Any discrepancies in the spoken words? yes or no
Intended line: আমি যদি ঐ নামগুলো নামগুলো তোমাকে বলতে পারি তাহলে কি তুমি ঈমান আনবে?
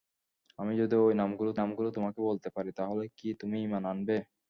no